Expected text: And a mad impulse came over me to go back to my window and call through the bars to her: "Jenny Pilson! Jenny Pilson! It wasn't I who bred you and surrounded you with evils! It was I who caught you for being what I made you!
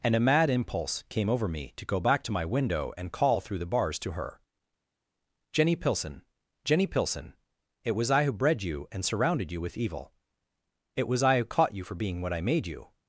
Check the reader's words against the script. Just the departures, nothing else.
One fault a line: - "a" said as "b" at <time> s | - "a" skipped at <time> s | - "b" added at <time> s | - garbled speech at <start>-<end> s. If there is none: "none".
- "wasn't" said as "was" at 7.9 s
- "evils" said as "evil" at 9.8 s